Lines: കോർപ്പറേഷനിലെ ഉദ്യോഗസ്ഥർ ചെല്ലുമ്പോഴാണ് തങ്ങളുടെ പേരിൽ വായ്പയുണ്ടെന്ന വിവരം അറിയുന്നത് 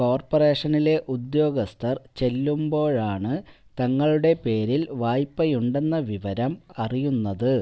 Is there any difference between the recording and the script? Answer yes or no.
no